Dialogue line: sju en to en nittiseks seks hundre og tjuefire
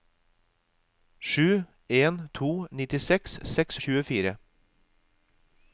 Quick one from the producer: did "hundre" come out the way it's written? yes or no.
no